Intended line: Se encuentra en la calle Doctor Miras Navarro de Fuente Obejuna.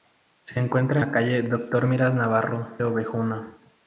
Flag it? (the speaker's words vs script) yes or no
yes